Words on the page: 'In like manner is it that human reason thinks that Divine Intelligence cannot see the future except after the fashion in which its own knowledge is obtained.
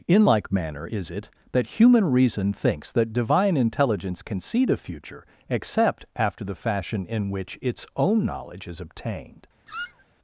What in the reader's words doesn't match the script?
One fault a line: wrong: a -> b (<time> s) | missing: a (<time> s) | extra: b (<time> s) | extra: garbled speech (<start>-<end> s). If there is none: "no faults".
wrong: cannot -> can (4.2 s)